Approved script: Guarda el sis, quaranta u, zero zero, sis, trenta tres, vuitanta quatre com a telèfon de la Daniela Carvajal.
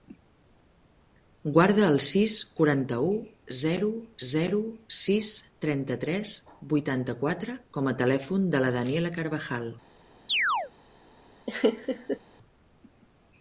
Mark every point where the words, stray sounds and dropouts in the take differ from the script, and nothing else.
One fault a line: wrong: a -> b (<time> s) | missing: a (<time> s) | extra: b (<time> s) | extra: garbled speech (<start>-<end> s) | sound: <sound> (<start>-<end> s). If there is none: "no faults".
sound: chirp (10.3-10.7 s)
sound: laugh (11.5-12.2 s)